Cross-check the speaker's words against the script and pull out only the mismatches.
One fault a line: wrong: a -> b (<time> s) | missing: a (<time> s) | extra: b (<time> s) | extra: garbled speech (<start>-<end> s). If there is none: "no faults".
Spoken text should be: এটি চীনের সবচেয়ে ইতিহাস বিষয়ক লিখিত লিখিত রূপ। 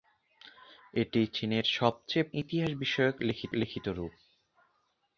no faults